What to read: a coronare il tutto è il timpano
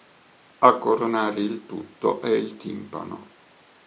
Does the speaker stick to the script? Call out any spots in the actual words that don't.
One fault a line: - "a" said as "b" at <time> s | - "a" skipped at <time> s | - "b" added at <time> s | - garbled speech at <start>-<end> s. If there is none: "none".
none